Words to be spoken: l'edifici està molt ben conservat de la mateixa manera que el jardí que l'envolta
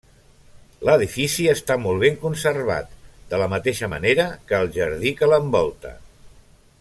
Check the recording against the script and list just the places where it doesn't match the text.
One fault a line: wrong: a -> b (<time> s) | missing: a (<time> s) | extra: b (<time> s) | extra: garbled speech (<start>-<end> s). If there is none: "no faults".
no faults